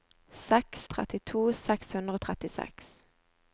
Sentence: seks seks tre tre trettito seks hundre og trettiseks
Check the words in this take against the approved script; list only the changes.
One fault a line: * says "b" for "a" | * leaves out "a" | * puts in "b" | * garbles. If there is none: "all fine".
* leaves out "seks tre tre"